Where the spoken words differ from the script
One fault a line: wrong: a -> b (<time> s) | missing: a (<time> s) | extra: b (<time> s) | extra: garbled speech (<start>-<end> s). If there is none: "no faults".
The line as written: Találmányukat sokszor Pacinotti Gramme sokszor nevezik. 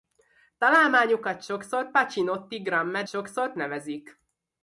no faults